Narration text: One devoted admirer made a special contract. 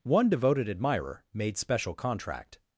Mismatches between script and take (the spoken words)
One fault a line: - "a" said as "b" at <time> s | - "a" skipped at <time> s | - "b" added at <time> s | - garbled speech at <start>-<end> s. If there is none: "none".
- "a" skipped at 1.6 s